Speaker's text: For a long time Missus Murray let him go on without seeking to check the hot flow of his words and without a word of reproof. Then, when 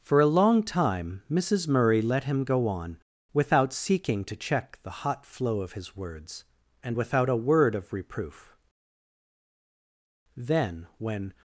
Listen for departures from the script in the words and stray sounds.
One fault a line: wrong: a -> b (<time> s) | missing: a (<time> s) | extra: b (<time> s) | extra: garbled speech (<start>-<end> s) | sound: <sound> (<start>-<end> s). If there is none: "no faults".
no faults